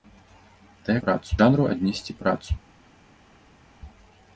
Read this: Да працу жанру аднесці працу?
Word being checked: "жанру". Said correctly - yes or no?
yes